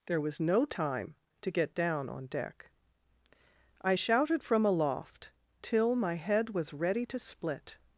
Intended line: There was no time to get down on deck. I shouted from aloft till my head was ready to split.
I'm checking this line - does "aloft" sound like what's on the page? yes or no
yes